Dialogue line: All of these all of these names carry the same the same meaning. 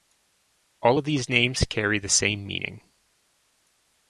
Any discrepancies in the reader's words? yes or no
yes